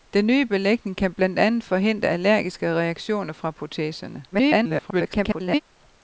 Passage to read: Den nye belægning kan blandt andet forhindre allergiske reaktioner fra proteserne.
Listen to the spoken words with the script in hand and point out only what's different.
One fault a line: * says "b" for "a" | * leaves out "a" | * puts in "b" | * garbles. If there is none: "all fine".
* garbles